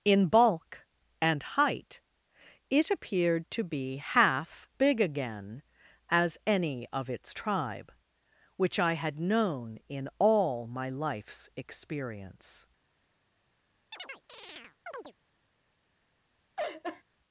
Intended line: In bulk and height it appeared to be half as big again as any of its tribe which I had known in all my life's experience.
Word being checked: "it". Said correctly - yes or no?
yes